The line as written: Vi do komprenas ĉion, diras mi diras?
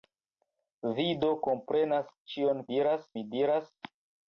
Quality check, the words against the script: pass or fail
pass